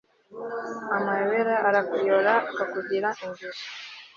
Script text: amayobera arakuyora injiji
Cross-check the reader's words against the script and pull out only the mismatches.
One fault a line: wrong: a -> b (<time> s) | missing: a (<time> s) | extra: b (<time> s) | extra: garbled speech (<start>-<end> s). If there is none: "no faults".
extra: akakugira (2.5 s)